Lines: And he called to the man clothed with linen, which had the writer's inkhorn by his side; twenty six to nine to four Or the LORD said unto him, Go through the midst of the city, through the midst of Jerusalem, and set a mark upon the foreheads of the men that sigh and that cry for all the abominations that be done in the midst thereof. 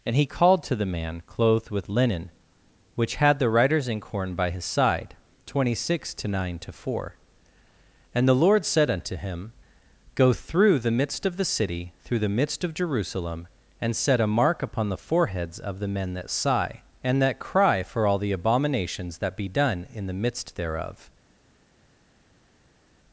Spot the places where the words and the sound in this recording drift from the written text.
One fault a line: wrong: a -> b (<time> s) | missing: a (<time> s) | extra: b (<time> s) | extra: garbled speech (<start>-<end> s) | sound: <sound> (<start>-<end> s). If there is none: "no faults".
wrong: Or -> And (8.1 s)